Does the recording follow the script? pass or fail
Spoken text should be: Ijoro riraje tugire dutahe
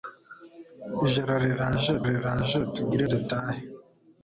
fail